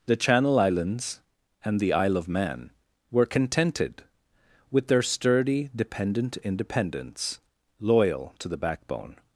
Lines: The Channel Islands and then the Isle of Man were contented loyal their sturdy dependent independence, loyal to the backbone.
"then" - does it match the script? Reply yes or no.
no